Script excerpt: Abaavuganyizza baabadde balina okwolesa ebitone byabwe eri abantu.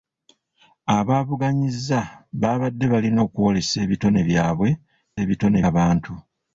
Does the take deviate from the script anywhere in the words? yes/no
yes